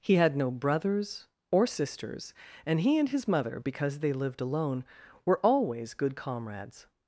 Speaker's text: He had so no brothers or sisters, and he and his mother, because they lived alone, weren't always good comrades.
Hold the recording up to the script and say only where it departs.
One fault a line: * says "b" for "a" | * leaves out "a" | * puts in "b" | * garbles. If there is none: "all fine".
* leaves out "so"
* says "were" for "weren't"